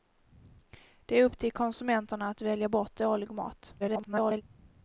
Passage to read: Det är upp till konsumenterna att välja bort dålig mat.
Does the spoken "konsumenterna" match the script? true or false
true